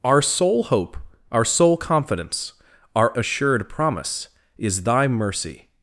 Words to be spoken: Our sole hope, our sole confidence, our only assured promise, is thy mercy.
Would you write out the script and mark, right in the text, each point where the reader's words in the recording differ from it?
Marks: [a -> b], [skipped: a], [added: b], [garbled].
Our sole hope, our sole confidence, our [skipped: only] assured promise, is thy mercy.